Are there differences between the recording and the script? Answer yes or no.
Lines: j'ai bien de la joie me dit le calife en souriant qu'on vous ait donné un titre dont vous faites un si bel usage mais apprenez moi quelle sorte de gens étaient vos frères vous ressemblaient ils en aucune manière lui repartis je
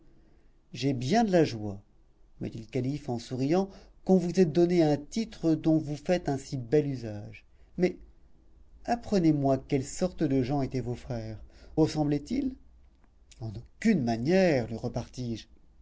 yes